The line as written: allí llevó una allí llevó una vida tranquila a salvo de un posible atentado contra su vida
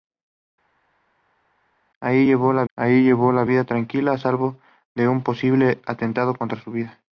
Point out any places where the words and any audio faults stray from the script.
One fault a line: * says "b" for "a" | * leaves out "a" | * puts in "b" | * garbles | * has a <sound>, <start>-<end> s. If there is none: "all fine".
all fine